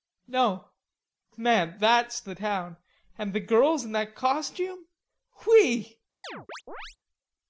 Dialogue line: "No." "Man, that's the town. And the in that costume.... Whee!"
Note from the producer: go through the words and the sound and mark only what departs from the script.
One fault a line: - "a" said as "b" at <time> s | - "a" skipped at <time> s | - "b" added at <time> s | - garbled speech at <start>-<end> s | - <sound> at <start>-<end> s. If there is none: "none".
- "girls" added at 3.4 s
- chirp at 6.2-7.0 s